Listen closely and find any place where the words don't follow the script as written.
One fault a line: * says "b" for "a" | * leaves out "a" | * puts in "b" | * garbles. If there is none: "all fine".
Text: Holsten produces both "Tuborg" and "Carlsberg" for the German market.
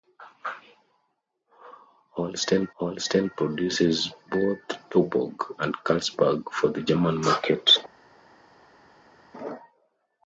* puts in "holsten"